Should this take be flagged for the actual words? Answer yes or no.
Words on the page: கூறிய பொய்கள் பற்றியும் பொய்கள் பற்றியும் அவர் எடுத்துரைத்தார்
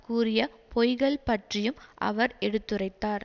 yes